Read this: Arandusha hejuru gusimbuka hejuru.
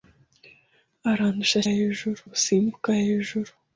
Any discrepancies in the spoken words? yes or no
no